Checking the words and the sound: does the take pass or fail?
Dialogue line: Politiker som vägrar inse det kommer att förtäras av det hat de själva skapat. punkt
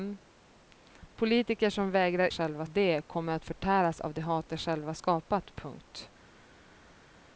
fail